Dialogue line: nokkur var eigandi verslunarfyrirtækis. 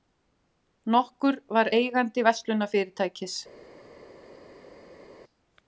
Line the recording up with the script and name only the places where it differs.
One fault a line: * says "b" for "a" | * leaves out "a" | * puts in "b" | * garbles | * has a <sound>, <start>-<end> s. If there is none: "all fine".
all fine